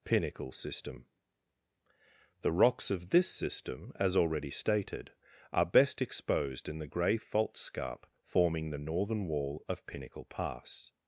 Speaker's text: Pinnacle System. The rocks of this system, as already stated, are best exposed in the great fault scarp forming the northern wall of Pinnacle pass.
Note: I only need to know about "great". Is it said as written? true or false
false